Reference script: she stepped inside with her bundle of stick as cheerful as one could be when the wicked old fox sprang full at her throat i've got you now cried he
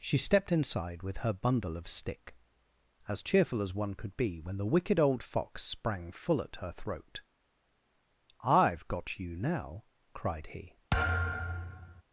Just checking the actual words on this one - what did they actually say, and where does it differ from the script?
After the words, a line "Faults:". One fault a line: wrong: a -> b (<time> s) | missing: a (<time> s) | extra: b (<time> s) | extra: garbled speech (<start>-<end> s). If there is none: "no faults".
she stepped inside with her bundle of stick as cheerful as one could be when the wicked old fox sprang full at her throat i've got you now cried he
Faults:
no faults